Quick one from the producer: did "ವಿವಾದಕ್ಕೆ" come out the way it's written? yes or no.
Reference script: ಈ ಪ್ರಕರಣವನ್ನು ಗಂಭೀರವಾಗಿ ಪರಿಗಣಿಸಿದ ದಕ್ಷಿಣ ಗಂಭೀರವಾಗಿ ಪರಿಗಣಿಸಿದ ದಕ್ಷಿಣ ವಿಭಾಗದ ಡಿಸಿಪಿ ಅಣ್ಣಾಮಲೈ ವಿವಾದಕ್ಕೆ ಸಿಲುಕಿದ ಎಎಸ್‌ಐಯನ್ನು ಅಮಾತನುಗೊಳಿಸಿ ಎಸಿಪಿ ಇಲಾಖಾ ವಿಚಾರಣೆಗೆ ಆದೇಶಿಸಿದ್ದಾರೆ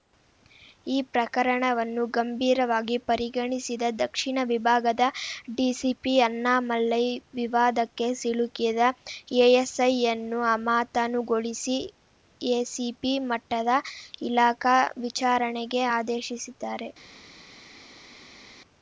yes